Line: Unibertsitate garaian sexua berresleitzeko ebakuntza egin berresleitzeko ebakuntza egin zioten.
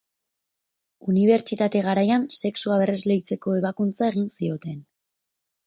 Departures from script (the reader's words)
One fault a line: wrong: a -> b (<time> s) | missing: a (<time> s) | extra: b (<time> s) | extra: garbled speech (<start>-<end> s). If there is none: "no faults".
missing: berresleitzeko ebakuntza egin (4.3 s)